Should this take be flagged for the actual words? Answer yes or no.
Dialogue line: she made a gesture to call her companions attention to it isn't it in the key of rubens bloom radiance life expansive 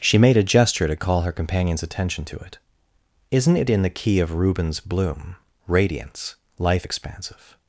no